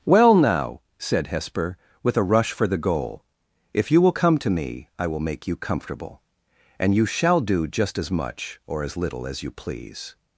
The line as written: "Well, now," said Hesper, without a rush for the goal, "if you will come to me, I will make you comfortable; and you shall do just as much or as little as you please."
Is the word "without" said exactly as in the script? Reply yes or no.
no